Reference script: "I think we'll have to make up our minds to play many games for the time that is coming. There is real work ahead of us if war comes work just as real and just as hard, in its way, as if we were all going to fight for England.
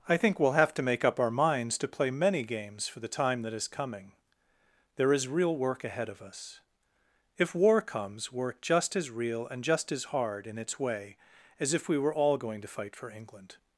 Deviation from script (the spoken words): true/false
false